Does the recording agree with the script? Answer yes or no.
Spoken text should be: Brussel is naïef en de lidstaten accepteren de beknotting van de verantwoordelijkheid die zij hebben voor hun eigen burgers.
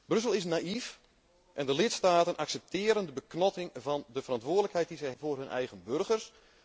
no